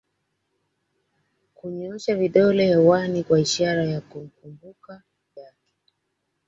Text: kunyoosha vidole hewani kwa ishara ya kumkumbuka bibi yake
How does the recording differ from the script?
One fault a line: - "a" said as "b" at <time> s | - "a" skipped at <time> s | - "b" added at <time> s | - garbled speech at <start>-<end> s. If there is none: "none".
- "bibi" skipped at 5.0 s